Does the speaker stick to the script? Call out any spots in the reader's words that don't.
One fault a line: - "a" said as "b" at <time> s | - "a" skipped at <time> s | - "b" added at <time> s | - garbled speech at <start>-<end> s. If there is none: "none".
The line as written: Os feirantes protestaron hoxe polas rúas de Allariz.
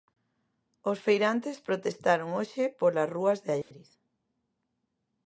none